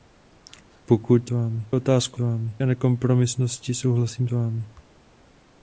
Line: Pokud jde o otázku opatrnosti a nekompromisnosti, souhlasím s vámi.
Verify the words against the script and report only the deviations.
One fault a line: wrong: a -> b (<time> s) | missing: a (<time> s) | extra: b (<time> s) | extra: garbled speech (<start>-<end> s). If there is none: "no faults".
wrong: jde -> vámi (1.3 s)
wrong: opatrnosti -> vámi (2.2 s)
missing: s (4.3 s)